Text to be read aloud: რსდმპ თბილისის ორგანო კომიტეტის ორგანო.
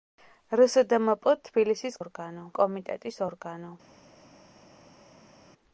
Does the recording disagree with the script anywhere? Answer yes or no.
no